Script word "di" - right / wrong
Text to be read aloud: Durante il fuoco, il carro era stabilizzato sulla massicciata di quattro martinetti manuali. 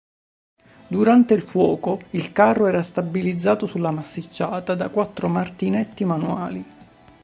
wrong